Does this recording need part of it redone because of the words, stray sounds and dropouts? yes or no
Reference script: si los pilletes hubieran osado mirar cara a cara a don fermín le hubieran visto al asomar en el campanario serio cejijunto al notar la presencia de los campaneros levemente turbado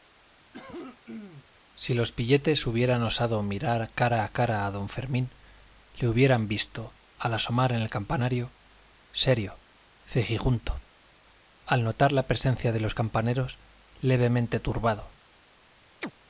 yes